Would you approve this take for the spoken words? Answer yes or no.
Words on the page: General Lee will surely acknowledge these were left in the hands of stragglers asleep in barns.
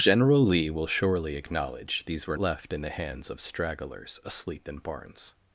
yes